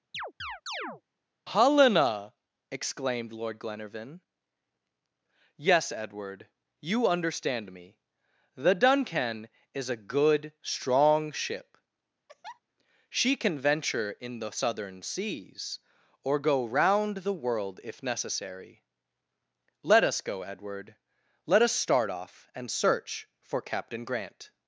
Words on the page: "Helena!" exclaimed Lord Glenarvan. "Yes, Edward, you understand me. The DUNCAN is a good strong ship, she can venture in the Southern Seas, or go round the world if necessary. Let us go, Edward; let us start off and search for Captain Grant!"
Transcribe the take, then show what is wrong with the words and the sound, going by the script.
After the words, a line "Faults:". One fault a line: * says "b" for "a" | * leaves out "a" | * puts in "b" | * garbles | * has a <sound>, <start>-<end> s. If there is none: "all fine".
"Helena!" exclaimed Lord Glenarvan. "Yes, Edward, you understand me. The DUNCAN is a good strong ship, she can venture in the Southern Seas, or go round the world if necessary. Let us go, Edward; let us start off and search for Captain Grant!"
Faults:
* has a chirp, 0.1-1.0 s
* has a laugh, 12.3-12.6 s